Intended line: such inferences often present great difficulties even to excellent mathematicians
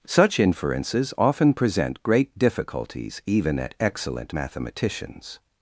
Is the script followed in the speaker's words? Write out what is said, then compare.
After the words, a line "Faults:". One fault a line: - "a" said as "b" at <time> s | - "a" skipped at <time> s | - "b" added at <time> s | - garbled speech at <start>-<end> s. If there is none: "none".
such inferences often present great difficulties even at excellent mathematicians
Faults:
- "to" said as "at" at 3.6 s